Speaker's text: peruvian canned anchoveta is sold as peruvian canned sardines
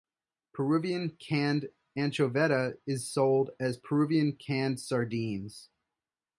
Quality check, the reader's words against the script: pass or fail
pass